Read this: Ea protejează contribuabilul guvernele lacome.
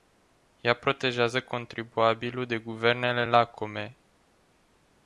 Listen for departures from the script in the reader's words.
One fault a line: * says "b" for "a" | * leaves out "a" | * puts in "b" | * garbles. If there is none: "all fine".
* puts in "de"